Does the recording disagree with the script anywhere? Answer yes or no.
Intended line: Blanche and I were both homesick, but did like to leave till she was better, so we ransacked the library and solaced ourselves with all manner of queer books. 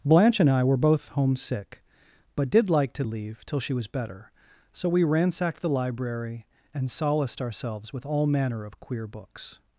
no